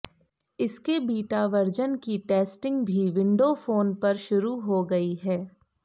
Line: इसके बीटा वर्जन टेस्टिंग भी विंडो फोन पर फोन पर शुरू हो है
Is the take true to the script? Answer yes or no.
no